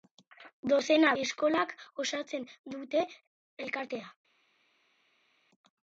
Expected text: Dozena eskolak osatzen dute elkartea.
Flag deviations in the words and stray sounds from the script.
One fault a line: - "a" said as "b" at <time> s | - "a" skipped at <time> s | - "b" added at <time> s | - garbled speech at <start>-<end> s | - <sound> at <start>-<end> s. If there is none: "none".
none